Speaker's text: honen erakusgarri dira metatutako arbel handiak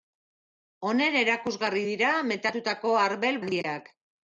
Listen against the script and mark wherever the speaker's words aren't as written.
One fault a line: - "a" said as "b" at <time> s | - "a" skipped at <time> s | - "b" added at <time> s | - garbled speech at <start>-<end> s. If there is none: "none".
none